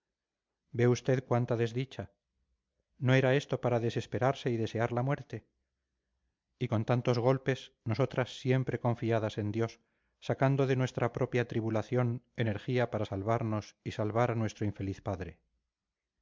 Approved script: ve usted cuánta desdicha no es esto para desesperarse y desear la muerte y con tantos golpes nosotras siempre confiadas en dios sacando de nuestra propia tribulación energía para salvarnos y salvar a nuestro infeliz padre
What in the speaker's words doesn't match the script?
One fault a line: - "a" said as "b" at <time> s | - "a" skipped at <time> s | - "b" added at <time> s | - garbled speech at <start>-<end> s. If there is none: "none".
- "es" said as "era" at 3.1 s